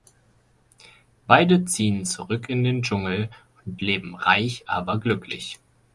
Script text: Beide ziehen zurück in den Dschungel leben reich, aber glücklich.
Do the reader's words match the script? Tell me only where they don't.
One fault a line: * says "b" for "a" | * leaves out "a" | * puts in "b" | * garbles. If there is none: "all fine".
* puts in "und"